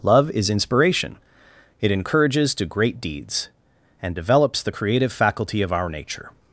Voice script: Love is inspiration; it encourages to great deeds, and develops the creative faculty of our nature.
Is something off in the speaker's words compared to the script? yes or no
no